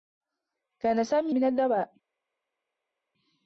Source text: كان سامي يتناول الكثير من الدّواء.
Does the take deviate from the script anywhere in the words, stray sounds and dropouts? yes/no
yes